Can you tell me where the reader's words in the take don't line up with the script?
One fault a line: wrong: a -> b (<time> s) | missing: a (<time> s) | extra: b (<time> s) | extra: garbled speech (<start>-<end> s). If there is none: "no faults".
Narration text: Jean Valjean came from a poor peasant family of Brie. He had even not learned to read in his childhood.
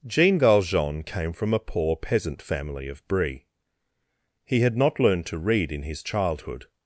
missing: even (4.8 s)